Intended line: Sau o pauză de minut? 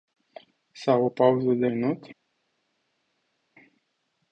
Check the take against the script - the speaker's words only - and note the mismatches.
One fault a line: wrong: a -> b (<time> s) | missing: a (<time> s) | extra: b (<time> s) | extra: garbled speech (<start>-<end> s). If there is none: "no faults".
no faults